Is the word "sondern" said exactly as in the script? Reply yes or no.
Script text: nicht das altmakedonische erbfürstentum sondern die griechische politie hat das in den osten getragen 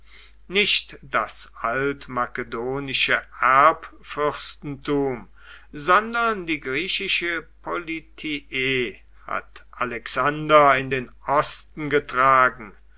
yes